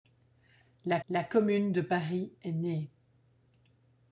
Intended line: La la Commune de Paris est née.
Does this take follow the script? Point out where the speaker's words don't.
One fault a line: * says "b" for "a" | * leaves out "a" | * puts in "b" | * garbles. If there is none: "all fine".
all fine